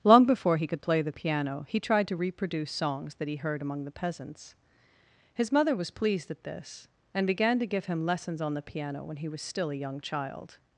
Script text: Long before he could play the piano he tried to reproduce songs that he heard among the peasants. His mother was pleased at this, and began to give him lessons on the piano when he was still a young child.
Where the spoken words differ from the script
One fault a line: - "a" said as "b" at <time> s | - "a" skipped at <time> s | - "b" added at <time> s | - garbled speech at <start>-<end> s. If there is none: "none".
none